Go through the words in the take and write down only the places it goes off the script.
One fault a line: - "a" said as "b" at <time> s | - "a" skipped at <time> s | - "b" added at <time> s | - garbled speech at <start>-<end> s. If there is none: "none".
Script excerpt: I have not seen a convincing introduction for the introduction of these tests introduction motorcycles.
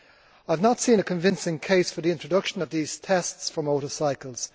- "introduction" said as "case" at 1.6 s
- "introduction" said as "for" at 3.5 s